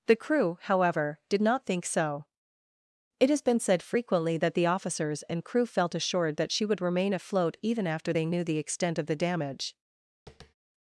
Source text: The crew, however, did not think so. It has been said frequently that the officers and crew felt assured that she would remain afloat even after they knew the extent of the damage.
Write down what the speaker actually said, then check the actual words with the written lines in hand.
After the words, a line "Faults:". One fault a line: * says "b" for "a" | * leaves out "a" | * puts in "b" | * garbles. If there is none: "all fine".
The crew, however, did not think so. It has been said frequently that the officers and crew felt assured that she would remain afloat even after they knew the extent of the damage.
Faults:
all fine